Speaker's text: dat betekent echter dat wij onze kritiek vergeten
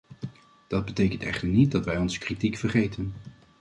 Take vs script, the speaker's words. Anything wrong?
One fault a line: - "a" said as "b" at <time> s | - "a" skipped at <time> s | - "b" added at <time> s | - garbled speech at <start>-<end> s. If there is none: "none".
- "niet" added at 1.5 s